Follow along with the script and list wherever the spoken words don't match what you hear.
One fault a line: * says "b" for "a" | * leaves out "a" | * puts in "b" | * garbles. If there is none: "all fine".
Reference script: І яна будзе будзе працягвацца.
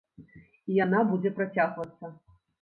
* leaves out "будзе"